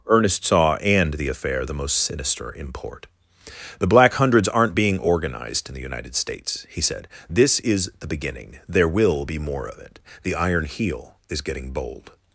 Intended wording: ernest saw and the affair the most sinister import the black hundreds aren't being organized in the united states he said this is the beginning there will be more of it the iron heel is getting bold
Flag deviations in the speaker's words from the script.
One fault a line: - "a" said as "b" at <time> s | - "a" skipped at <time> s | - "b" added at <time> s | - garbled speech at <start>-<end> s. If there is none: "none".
none